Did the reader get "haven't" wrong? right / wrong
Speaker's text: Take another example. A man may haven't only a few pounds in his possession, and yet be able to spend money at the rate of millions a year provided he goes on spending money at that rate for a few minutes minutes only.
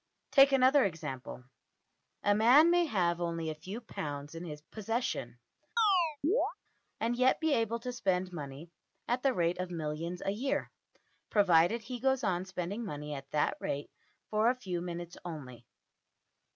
wrong